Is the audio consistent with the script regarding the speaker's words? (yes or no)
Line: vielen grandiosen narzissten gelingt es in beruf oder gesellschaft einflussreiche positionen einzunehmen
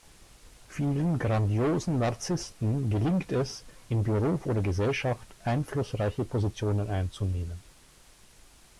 yes